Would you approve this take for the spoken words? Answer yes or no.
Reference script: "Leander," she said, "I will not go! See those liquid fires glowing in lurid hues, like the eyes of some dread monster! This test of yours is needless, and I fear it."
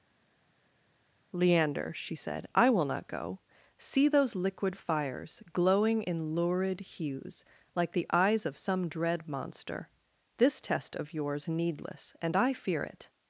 no